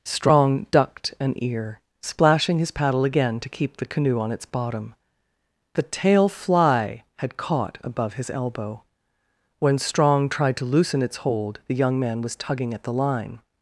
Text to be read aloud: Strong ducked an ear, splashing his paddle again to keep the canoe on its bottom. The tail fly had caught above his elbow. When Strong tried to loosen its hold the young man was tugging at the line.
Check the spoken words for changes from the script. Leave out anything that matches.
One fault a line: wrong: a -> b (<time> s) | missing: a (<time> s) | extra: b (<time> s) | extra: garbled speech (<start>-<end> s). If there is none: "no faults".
no faults